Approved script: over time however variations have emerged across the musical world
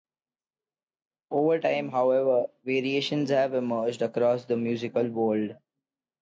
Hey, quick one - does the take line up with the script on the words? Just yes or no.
yes